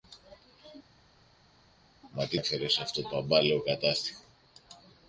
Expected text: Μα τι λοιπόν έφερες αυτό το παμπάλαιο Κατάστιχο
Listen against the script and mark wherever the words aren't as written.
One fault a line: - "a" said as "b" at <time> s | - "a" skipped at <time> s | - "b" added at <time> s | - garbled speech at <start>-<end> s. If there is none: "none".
- "λοιπόν" skipped at 2.4 s
- "το" skipped at 3.0 s